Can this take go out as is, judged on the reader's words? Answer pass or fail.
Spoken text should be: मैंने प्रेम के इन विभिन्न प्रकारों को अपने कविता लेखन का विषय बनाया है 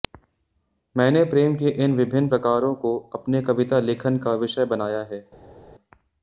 pass